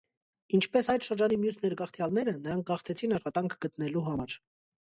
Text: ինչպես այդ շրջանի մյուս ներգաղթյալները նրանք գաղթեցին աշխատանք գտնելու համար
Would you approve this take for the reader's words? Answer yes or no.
yes